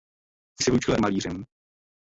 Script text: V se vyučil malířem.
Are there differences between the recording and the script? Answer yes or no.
no